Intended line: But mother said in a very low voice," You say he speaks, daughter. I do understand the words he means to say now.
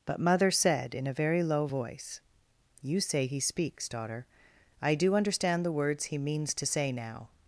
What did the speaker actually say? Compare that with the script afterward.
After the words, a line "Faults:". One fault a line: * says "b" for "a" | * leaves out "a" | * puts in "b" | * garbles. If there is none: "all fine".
But mother said in a very low voice," You say he speaks, daughter. I do understand the words he means to say now.
Faults:
all fine